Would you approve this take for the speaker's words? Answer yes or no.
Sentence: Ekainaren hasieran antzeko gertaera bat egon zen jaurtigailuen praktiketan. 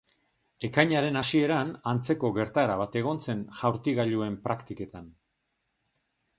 yes